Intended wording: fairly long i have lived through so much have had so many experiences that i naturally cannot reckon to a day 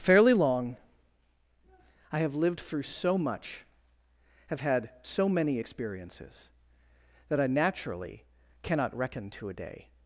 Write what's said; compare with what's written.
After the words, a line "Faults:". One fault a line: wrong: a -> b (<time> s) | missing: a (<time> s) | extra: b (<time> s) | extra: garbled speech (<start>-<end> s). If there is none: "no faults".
fairly long i have lived through so much have had so many experiences that i naturally cannot reckon to a day
Faults:
no faults